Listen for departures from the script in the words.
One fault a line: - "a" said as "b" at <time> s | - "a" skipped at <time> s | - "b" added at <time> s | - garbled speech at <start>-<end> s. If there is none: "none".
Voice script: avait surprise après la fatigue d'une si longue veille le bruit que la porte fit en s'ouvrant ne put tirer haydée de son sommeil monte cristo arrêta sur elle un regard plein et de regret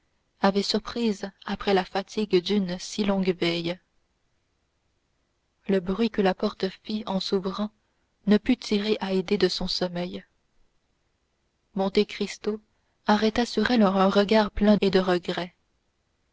none